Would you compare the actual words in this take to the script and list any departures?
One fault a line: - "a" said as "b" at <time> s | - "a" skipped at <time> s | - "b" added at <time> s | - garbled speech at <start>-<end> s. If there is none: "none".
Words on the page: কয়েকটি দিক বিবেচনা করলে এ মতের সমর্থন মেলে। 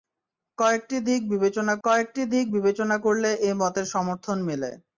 - "কয়েকটি দিক বিবেচনা" added at 1.8 s